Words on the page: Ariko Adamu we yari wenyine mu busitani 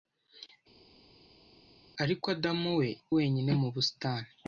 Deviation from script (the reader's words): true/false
true